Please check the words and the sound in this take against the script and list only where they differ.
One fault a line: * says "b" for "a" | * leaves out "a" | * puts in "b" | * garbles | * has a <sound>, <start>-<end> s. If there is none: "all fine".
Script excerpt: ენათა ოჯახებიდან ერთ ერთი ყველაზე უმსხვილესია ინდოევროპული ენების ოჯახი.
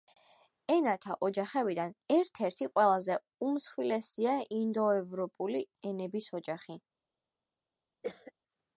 * has a cough, 8.0-8.3 s